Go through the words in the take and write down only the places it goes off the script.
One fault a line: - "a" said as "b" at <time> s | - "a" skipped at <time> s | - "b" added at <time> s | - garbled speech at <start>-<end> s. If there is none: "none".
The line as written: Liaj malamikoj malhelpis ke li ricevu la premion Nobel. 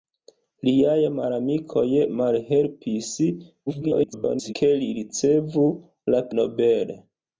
- garbled speech at 3.7-4.5 s
- "premion" skipped at 6.2 s